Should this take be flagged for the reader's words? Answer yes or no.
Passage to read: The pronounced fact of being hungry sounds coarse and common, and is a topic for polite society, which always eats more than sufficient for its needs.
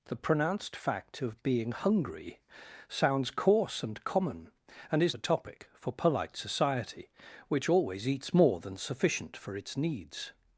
no